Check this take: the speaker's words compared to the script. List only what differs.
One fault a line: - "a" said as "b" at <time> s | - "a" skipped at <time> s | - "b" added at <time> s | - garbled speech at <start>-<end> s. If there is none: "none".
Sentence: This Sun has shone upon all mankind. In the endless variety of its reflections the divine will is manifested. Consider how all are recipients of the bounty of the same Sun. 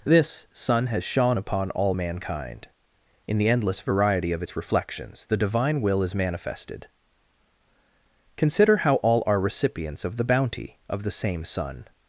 none